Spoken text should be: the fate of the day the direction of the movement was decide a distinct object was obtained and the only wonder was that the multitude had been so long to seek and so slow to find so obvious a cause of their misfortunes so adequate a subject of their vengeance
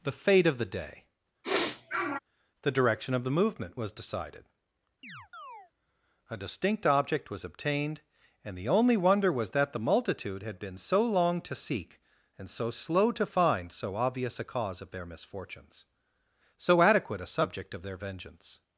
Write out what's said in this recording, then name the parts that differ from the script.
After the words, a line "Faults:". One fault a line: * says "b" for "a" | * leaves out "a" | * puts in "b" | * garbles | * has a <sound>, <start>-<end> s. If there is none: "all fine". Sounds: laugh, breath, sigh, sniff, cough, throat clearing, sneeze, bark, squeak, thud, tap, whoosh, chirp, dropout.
the fate of the day the direction of the movement was decided a distinct object was obtained and the only wonder was that the multitude had been so long to seek and so slow to find so obvious a cause of their misfortunes so adequate a subject of their vengeance
Faults:
* has a sniff, 1.4-2.2 s
* says "decided" for "decide"
* has a chirp, 5.0-5.7 s